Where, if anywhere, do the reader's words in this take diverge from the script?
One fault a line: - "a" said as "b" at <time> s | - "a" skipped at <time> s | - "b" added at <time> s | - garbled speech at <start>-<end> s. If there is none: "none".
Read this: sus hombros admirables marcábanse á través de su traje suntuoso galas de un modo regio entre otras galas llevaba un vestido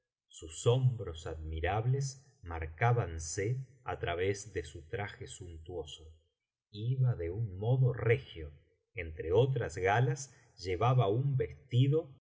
- "galas" said as "iba" at 6.7 s